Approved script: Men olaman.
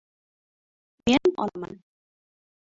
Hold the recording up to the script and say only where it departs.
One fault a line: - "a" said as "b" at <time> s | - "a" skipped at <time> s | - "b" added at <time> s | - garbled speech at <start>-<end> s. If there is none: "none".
none